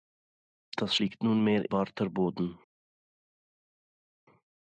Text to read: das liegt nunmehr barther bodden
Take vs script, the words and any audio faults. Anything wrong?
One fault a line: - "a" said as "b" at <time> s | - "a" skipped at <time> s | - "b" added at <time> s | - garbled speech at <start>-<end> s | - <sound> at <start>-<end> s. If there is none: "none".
none